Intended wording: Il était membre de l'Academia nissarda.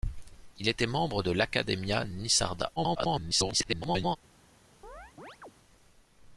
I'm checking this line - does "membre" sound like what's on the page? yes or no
yes